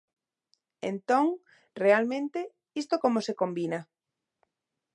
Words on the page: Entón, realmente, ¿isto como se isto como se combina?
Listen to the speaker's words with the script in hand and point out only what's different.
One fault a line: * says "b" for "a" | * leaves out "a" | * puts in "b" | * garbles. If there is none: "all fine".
* leaves out "isto como se"